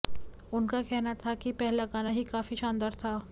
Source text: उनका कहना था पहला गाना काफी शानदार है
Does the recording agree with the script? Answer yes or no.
no